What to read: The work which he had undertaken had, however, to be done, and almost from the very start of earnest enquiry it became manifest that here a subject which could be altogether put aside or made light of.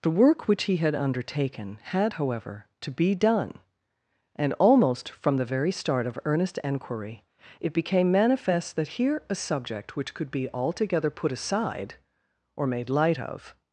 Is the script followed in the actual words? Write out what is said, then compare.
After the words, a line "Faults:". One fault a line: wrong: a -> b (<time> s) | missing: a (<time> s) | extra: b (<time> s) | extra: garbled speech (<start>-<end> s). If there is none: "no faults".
The work which he had undertaken had, however, to be done, and almost from the very start of earnest enquiry it became manifest that here a subject which could be altogether put aside or made light of.
Faults:
no faults